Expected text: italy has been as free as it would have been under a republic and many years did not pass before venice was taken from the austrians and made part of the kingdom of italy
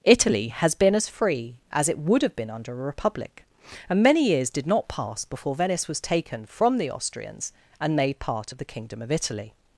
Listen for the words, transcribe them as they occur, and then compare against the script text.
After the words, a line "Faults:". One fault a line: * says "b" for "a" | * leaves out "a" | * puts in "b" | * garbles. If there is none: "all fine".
italy has been as free as it would have been under a republic and many years did not pass before venice was taken from the austrians and made part of the kingdom of italy
Faults:
all fine